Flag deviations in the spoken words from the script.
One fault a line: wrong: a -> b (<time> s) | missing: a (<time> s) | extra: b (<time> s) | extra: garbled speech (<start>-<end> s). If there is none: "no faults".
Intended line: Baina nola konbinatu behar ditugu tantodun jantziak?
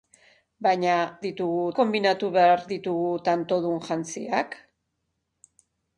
wrong: nola -> ditugu (1.3 s)